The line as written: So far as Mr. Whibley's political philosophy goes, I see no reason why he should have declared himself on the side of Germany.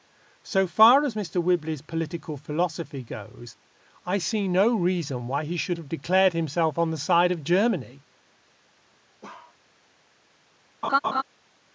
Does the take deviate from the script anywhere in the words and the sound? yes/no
yes